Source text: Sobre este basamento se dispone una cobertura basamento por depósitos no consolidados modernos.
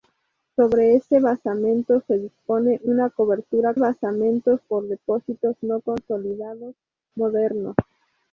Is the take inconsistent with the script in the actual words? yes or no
no